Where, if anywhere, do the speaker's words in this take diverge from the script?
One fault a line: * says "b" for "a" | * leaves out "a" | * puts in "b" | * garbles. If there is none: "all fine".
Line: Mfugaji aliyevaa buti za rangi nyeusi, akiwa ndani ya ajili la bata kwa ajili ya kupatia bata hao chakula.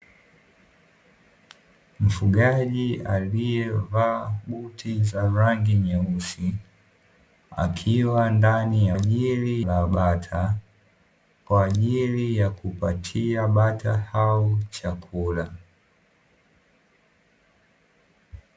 all fine